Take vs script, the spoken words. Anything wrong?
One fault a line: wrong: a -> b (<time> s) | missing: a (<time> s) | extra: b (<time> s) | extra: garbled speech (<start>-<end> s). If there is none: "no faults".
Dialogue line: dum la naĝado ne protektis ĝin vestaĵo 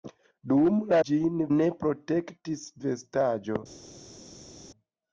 wrong: naĝado -> ĝin (1.1 s)
missing: ĝin (2.6 s)